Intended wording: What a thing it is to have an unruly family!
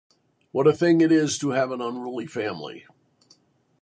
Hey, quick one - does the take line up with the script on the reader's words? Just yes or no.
yes